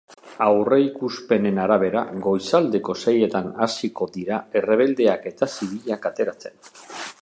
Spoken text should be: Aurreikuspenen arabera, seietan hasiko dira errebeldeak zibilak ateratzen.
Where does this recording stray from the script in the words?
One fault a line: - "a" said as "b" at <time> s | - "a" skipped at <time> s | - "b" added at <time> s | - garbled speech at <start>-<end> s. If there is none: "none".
- "goizaldeko" added at 2.2 s
- "eta" added at 5.3 s